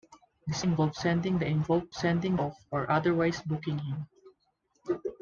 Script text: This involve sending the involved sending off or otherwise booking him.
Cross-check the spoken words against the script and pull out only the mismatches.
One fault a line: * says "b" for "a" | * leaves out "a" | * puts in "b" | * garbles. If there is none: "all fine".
all fine